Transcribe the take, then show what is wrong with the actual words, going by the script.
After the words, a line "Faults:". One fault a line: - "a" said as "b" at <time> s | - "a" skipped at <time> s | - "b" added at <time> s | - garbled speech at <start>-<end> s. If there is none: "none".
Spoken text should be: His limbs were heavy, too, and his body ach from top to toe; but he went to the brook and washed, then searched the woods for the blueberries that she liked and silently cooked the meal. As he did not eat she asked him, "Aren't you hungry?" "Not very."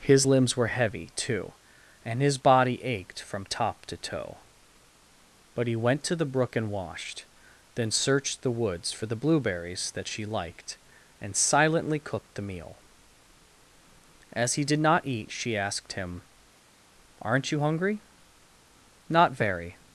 His limbs were heavy, too, and his body ached from top to toe; but he went to the brook and washed, then searched the woods for the blueberries that she liked and silently cooked the meal. As he did not eat she asked him, "Aren't you hungry?" "Not very."
Faults:
- "ach" said as "ached" at 2.8 s